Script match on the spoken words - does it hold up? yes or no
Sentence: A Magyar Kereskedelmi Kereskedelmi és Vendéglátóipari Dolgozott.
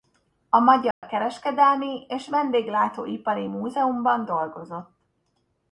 no